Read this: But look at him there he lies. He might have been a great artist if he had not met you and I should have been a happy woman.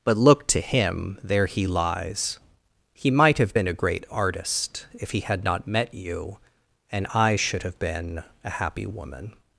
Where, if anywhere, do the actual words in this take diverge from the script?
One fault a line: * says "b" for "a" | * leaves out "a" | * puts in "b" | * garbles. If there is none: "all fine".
* says "to" for "at"